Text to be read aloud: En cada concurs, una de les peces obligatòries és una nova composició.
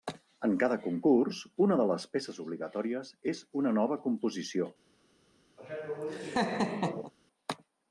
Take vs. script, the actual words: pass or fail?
pass